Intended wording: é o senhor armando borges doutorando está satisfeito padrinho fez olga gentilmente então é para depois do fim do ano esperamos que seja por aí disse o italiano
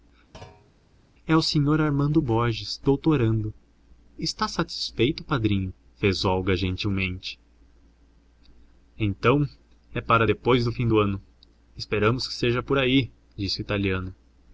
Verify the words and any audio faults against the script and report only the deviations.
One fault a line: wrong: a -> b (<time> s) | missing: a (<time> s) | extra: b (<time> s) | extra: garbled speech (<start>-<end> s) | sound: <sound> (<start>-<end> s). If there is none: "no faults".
sound: thud (0.3-0.7 s)